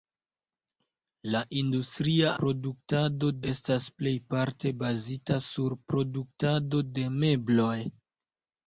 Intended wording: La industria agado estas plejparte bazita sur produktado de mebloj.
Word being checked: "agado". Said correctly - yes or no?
no